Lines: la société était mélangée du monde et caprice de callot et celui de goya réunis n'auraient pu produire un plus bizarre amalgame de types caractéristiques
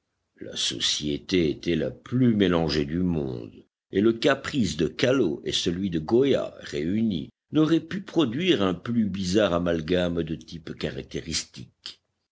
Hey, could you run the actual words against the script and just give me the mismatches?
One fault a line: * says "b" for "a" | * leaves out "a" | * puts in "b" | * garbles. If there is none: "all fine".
* puts in "la plus"
* puts in "le"